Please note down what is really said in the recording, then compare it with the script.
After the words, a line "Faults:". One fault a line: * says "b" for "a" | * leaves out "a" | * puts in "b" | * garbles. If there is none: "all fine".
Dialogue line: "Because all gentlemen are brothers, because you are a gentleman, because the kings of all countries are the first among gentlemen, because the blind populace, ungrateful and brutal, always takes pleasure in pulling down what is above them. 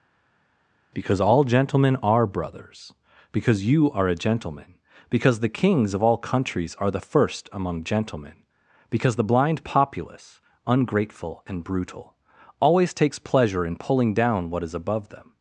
"Because all gentlemen are brothers, because you are a gentleman, because the kings of all countries are the first among gentlemen, because the blind populace, ungrateful and brutal, always takes pleasure in pulling down what is above them.
Faults:
all fine